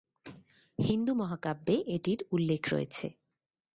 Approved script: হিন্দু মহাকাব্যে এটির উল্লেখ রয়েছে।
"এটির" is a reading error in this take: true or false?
false